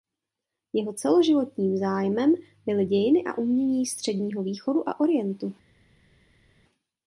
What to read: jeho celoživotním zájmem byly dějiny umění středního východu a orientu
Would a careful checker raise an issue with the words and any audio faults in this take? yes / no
yes